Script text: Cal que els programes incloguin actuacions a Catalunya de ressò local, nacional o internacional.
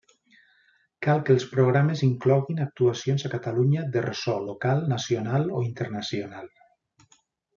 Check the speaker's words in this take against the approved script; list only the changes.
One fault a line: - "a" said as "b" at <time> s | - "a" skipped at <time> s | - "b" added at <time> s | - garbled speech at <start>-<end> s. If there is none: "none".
none